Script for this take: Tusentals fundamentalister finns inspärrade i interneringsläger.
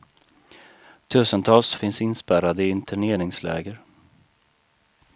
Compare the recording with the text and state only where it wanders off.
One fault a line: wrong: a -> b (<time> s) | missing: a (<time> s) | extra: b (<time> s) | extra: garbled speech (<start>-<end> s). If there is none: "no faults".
missing: fundamentalister (1.8 s)